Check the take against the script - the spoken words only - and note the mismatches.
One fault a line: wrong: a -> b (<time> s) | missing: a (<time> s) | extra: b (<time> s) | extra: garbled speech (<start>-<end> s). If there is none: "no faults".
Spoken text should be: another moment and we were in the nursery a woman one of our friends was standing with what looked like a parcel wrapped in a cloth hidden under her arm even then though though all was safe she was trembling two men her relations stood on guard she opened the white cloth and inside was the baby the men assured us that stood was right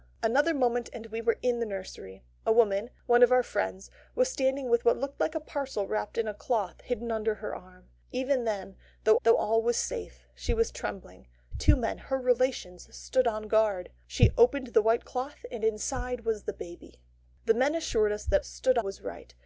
no faults